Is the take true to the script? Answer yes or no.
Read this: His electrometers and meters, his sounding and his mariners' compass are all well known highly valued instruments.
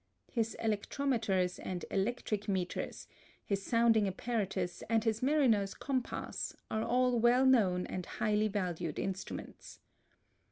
no